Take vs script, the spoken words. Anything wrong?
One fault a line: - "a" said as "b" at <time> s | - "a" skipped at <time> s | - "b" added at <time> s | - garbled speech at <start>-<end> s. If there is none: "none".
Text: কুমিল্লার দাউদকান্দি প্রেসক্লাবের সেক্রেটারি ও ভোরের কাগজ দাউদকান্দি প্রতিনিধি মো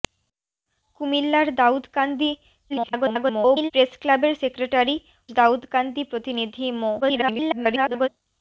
- garbled speech at 2.7-3.7 s
- "ও ভোরের কাগজ" skipped at 5.0 s
- garbled speech at 7.0-8.1 s